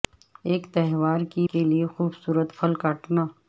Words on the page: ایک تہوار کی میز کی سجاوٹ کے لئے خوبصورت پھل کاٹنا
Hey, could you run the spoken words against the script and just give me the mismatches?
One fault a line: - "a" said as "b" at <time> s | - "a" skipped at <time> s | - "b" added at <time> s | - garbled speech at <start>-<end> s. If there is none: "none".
- "میز کی سجاوٹ" skipped at 1.5 s